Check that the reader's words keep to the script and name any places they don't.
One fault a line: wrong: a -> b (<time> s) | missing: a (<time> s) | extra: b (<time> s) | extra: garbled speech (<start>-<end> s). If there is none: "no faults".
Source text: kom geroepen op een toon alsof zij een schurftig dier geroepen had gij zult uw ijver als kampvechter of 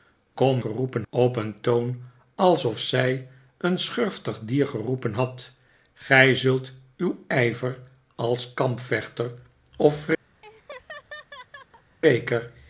no faults